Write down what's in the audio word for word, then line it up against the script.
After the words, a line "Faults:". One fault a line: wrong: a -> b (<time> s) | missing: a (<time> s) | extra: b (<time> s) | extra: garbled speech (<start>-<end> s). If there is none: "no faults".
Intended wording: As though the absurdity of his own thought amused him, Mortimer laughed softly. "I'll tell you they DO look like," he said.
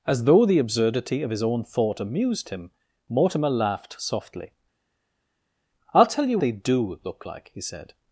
As though the absurdity of his own thought amused him, Mortimer laughed softly. "I'll tell you they DO look like," he said.
Faults:
no faults